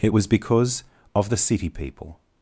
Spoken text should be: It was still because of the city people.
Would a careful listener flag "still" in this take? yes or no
yes